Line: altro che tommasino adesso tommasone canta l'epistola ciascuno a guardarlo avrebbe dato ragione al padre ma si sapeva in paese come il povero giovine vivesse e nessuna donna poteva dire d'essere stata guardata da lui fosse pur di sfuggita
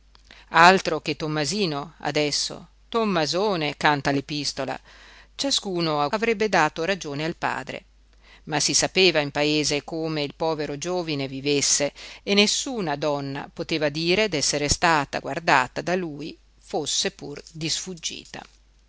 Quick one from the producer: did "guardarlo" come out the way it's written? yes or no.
no